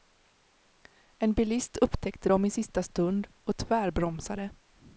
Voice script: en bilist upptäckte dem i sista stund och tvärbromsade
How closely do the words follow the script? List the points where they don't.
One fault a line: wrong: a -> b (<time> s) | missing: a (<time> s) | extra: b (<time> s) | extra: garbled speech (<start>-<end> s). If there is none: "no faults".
no faults